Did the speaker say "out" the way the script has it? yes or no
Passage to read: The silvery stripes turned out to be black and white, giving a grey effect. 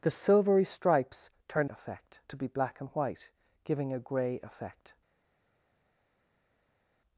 no